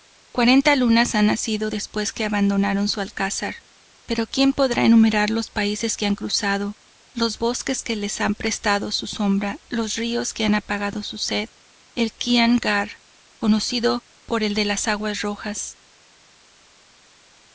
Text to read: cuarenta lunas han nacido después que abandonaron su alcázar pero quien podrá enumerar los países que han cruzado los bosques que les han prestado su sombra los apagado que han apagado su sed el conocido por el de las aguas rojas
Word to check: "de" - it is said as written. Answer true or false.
true